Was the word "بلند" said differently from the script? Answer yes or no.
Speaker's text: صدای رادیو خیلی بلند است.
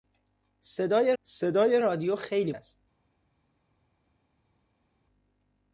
yes